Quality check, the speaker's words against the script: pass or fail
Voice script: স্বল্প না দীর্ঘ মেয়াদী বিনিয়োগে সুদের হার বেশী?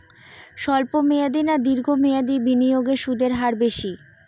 fail